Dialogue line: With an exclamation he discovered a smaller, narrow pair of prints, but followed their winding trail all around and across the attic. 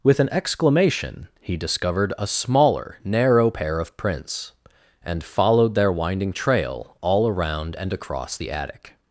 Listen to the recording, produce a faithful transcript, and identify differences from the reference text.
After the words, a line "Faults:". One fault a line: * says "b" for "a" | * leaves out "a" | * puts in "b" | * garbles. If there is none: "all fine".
With an exclamation he discovered a smaller, narrow pair of prints, and followed their winding trail all around and across the attic.
Faults:
* says "and" for "but"